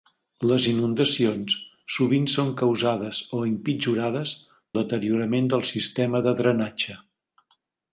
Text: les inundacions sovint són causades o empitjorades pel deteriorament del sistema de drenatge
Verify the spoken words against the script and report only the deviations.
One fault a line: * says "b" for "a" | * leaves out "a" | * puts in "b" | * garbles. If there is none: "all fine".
* leaves out "pel"